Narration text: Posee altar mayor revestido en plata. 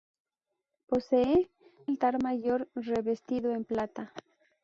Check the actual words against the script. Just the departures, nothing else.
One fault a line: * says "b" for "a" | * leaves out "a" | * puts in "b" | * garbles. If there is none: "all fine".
all fine